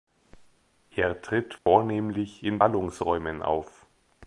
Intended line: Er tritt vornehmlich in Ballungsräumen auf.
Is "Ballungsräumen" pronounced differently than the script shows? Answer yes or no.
no